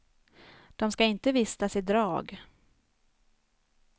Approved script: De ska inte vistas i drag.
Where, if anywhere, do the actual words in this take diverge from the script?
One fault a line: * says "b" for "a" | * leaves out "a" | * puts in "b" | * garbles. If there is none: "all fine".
all fine